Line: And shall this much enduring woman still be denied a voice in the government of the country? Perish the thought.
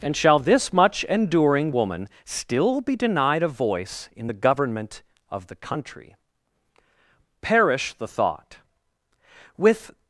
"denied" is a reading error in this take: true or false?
false